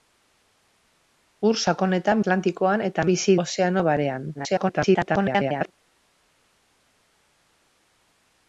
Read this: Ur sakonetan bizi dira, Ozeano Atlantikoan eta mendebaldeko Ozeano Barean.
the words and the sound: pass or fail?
fail